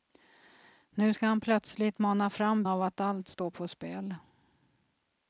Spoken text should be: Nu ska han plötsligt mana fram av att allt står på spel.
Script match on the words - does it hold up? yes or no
yes